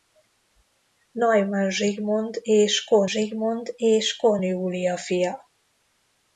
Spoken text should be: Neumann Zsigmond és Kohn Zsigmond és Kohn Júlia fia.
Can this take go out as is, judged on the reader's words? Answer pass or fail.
pass